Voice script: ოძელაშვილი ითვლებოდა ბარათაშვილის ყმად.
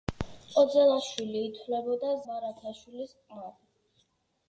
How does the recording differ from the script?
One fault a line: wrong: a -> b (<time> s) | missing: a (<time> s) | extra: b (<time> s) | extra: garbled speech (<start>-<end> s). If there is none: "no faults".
no faults